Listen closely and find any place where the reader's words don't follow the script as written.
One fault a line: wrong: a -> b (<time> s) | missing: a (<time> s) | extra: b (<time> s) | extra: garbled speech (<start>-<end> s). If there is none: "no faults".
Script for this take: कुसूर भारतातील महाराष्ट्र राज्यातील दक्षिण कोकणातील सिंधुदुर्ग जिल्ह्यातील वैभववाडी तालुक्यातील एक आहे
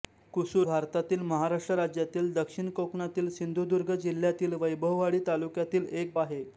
no faults